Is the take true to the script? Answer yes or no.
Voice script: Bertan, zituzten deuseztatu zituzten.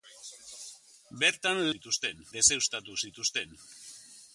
yes